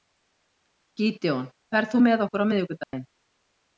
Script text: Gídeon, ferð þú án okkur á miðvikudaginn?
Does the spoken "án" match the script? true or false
false